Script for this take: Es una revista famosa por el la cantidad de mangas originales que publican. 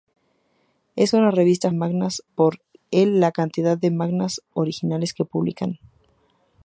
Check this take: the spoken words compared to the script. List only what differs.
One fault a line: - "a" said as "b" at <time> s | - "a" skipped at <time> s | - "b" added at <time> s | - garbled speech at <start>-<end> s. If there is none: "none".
- "famosa" said as "mangas" at 1.7 s